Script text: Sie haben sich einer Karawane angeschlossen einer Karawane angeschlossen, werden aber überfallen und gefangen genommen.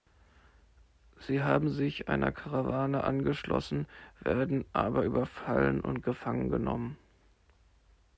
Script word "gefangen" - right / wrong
right